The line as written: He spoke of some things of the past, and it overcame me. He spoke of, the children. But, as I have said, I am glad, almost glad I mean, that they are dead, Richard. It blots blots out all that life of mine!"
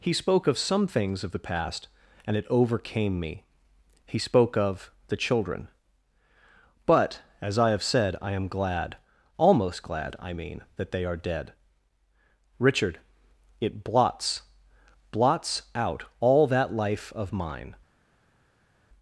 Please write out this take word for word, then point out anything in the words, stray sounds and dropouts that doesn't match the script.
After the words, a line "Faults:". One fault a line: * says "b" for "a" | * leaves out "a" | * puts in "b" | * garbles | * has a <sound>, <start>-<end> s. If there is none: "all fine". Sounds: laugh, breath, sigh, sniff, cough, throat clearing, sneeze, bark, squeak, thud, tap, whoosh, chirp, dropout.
He spoke of some things of the past, and it overcame me. He spoke of, the children. But, as I have said, I am glad, almost glad I mean, that they are dead, Richard. It blots blots out all that life of mine!"
Faults:
all fine